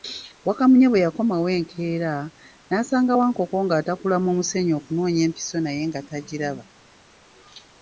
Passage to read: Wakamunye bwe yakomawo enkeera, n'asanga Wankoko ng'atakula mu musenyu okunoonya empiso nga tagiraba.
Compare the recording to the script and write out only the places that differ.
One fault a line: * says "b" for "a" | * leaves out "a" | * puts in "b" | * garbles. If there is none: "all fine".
* puts in "naye"